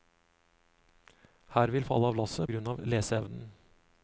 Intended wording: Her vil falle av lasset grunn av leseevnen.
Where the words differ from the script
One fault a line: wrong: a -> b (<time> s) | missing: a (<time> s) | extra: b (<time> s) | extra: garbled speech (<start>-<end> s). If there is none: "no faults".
no faults